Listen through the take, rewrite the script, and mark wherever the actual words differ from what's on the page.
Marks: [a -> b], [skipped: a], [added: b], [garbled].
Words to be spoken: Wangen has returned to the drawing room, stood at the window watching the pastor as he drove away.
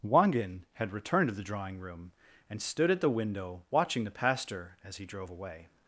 Wangen [has -> had] returned to the drawing room, [added: and] stood at the window watching the pastor as he drove away.